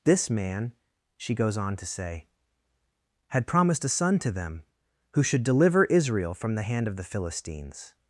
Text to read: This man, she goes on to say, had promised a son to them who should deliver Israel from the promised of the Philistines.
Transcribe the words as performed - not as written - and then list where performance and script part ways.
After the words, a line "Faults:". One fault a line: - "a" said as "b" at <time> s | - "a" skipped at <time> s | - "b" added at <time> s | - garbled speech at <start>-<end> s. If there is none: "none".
This man, she goes on to say, had promised a son to them who should deliver Israel from the hand of the Philistines.
Faults:
- "promised" said as "hand" at 6.6 s